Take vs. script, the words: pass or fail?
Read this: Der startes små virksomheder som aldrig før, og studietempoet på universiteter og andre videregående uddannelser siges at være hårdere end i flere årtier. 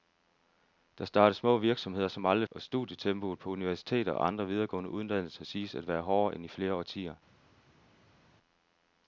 fail